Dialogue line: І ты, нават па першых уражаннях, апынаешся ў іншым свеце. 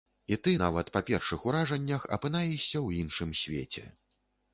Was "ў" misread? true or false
false